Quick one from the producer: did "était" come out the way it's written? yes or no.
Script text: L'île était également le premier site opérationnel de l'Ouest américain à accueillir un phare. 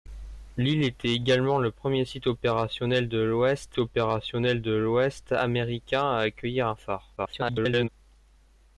yes